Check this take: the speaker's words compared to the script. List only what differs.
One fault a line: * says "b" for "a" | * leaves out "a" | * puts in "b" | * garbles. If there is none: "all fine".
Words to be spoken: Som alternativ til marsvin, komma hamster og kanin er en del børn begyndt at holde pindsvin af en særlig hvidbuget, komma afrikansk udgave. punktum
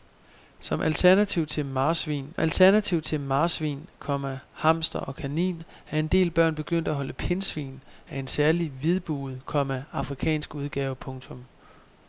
* puts in "alternativ til marsvin"